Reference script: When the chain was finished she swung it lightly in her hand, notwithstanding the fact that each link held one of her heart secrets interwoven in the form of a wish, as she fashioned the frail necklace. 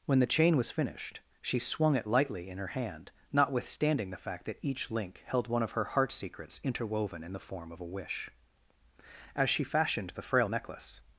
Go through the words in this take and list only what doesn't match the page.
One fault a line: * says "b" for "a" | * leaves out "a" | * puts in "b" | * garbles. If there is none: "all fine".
all fine